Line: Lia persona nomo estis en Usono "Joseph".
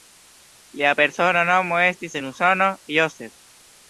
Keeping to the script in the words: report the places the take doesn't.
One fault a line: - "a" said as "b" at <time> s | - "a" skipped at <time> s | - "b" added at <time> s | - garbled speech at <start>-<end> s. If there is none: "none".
none